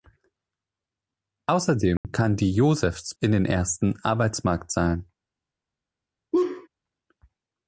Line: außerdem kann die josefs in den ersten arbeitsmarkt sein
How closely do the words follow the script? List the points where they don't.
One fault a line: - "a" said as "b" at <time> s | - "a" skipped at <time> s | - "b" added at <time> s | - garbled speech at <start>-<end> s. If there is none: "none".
none